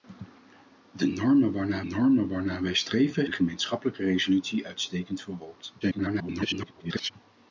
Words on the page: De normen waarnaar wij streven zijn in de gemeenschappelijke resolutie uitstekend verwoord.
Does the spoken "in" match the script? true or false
false